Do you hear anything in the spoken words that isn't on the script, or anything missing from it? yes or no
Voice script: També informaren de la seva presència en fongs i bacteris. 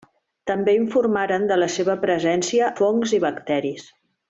yes